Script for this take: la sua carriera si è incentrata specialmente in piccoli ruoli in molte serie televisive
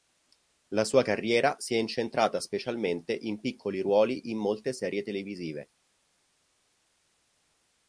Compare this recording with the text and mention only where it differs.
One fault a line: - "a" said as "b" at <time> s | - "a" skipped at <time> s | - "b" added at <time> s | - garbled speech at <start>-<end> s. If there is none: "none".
none